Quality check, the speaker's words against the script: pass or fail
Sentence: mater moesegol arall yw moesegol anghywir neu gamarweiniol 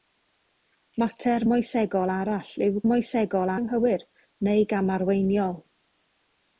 pass